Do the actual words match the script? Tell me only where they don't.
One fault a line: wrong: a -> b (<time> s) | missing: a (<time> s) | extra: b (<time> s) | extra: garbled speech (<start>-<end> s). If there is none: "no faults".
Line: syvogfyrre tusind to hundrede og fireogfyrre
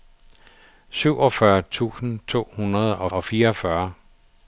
extra: og (3.1 s)